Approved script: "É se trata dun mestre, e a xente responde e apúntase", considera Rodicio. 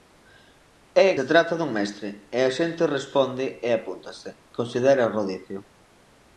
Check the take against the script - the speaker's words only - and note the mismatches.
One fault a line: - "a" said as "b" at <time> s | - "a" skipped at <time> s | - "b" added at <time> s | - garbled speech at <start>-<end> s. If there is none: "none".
none